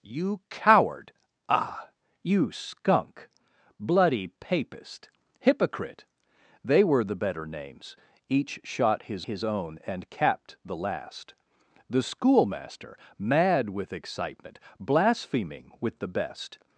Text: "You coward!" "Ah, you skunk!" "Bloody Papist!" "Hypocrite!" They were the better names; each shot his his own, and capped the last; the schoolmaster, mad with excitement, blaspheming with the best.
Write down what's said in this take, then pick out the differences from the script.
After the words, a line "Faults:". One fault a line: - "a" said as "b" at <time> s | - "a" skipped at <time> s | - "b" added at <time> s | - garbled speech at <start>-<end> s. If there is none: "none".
"You coward!" "Ah, you skunk!" "Bloody Papist!" "Hypocrite!" They were the better names; each shot his his own, and capped the last; the schoolmaster, mad with excitement, blaspheming with the best.
Faults:
none